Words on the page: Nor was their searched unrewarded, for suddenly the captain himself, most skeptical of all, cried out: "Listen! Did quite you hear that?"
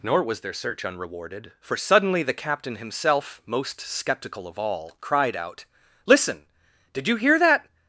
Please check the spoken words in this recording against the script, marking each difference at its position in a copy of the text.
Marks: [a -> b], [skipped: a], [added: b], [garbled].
Nor was their [searched -> search] unrewarded, for suddenly the captain himself, most skeptical of all, cried out: "Listen! Did [skipped: quite] you hear that?"